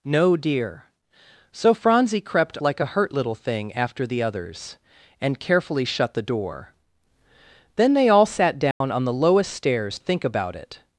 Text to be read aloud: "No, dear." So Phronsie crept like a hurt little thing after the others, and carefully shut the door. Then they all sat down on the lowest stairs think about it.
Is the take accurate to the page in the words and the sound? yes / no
no